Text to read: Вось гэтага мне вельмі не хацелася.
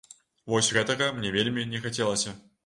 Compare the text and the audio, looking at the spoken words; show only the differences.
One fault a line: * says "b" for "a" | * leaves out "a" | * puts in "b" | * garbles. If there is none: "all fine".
all fine